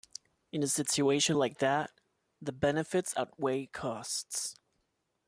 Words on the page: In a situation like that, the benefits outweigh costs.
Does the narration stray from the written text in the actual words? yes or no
no